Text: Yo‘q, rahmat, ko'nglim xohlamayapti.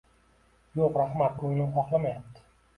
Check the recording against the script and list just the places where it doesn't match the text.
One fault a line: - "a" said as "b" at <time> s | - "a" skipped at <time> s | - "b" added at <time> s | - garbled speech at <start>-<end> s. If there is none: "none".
none